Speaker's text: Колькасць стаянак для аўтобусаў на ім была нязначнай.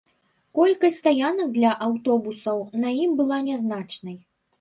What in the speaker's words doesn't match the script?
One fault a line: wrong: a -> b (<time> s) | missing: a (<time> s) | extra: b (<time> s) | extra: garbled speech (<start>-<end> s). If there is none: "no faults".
no faults